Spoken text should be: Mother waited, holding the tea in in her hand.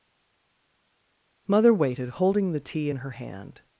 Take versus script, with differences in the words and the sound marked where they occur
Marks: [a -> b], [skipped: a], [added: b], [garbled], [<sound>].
Mother waited, holding the tea in [skipped: in] her hand.